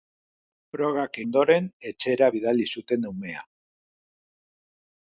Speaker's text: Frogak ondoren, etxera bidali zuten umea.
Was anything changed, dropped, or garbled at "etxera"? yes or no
no